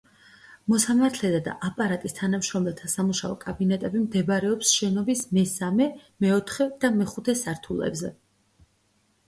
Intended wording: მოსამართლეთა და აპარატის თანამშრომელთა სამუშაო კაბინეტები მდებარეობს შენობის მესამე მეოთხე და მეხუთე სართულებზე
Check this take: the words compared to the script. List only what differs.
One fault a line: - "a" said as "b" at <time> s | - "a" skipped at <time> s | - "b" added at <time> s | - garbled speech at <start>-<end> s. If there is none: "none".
none